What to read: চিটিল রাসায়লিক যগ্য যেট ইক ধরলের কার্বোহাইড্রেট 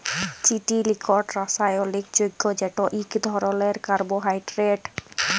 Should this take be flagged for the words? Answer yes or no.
yes